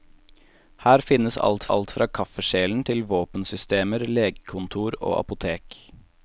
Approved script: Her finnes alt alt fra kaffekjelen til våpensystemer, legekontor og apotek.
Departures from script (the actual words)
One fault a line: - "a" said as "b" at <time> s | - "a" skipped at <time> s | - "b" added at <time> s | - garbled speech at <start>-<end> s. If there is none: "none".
none